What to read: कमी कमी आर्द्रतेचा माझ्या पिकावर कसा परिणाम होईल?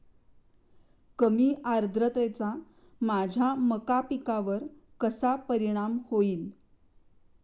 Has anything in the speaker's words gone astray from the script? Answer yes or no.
yes